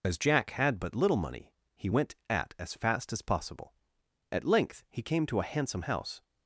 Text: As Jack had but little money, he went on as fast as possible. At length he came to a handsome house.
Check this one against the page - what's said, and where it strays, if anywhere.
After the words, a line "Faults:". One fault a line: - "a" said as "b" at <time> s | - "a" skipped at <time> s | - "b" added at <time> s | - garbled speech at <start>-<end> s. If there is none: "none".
As Jack had but little money, he went at as fast as possible. At length he came to a handsome house.
Faults:
- "on" said as "at" at 2.3 s